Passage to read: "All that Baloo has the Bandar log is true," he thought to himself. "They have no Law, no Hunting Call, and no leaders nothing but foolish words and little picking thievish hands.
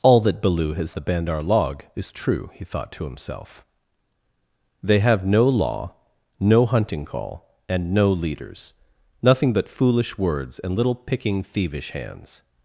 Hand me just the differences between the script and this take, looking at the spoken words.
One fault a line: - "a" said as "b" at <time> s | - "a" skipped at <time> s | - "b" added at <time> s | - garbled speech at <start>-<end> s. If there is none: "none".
none